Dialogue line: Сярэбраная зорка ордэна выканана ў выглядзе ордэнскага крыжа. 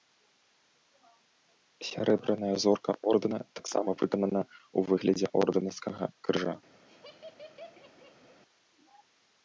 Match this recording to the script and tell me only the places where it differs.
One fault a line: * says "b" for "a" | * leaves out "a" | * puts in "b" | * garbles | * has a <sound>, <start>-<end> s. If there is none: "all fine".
* puts in "таксама"
* has a laugh, 6.9-8.4 s